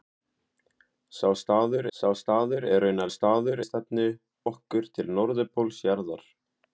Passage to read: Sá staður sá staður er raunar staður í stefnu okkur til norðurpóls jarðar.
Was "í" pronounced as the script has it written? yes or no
yes